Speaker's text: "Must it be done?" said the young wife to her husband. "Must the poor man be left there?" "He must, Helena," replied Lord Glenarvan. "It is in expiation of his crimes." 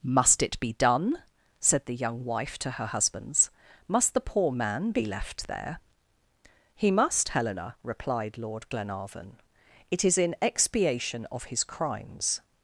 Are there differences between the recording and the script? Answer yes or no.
yes